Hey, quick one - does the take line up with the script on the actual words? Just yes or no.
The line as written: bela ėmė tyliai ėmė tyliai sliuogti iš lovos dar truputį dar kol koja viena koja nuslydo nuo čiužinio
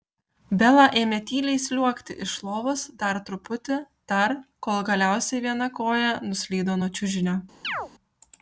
no